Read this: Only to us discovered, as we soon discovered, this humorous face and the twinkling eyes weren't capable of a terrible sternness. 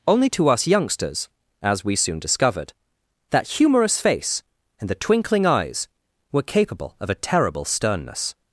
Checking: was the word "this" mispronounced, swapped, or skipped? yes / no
yes